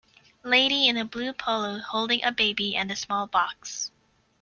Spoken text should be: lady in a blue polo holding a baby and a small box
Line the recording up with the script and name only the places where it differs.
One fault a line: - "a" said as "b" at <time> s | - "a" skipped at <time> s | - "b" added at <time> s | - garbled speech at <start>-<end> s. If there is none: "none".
none